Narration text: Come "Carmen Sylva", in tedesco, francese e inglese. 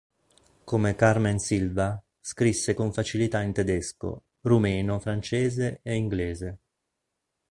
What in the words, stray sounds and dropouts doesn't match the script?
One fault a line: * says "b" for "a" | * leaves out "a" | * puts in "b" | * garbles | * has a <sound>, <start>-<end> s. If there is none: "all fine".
* puts in "scrisse con facilità"
* puts in "rumeno"